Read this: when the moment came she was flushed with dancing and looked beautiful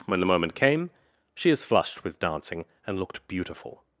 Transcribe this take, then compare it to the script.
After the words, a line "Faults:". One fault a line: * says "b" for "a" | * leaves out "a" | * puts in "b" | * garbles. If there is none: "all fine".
when the moment came she is flushed with dancing and looked beautiful
Faults:
* says "is" for "was"